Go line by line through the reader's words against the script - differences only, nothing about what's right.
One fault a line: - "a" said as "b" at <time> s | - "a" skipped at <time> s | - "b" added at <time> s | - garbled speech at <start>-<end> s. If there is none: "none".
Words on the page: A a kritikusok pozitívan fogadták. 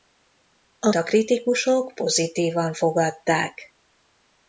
none